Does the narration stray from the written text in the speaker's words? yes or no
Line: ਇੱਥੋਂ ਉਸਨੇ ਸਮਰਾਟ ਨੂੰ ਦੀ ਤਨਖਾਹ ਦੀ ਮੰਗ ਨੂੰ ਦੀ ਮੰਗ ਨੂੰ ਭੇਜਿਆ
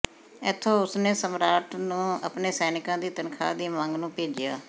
yes